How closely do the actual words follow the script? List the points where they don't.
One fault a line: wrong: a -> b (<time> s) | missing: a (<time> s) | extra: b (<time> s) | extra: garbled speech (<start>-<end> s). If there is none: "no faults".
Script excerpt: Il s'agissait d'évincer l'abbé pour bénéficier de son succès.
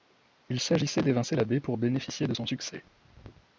no faults